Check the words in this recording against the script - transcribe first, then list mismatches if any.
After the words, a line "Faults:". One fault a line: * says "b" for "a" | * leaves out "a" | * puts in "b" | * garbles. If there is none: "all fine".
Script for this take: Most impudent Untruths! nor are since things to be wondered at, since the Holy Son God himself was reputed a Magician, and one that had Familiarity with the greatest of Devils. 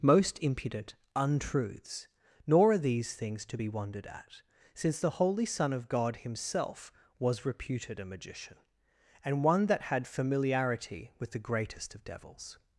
Most impudent Untruths! nor are these things to be wondered at, since the Holy Son of God himself was reputed a Magician, and one that had Familiarity with the greatest of Devils.
Faults:
* says "these" for "since"
* puts in "of"